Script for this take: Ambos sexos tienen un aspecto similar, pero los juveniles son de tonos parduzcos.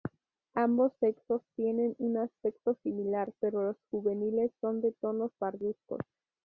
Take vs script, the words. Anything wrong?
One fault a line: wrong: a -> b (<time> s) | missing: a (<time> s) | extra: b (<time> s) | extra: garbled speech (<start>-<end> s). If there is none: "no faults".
no faults